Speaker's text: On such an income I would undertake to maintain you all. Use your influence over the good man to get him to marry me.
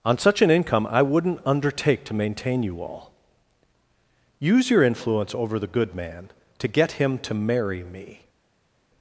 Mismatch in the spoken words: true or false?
true